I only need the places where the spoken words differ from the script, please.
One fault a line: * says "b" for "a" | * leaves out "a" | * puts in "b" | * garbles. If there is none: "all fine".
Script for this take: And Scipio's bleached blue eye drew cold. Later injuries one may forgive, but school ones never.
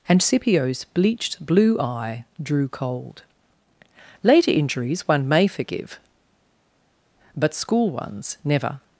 all fine